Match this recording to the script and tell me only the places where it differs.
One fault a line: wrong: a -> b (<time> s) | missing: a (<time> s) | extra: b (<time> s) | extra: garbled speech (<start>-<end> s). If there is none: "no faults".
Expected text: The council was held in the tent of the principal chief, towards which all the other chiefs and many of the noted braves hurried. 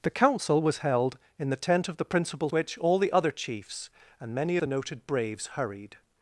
missing: chief towards (2.5 s)
missing: of (4.6 s)